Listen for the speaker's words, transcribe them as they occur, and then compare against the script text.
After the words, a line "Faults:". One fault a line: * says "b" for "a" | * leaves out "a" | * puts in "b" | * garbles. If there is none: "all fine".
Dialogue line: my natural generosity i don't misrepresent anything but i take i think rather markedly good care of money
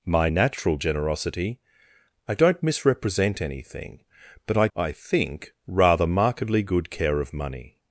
my natural generosity i don't misrepresent anything but i i think rather markedly good care of money
Faults:
* leaves out "take"